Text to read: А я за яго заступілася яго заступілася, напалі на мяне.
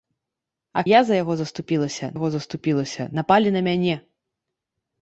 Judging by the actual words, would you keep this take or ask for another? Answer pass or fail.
pass